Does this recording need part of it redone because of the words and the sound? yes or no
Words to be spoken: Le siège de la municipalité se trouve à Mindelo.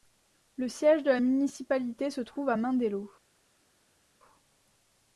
no